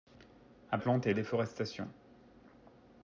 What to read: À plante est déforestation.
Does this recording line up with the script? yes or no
yes